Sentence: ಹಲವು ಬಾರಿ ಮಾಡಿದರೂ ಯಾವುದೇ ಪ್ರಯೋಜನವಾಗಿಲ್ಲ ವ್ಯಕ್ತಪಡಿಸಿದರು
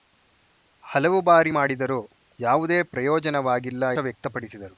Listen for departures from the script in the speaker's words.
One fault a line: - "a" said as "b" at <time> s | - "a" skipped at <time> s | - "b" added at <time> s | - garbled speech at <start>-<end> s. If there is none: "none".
none